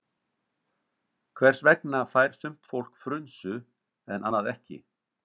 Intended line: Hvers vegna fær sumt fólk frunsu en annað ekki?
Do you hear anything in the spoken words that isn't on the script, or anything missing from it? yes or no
no